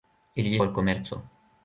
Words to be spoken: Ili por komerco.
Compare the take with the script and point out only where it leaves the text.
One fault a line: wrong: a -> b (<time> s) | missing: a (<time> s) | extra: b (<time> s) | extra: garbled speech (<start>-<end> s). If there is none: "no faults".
no faults